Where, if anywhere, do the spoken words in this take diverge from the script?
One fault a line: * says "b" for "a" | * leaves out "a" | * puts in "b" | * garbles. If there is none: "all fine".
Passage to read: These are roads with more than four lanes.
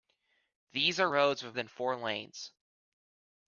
* leaves out "more"